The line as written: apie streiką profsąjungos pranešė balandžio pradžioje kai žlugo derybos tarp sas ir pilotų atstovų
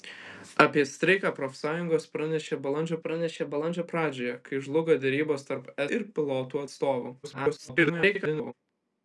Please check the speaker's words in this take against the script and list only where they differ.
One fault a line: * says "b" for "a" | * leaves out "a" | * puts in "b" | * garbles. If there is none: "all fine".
* puts in "pranešė balandžio"
* leaves out "sas"
* garbles